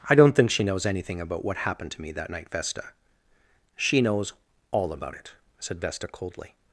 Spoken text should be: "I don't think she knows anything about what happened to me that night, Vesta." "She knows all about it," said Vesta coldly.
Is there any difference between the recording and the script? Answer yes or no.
no